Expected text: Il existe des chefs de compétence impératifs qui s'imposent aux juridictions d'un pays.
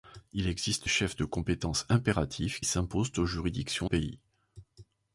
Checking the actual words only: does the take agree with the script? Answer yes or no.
no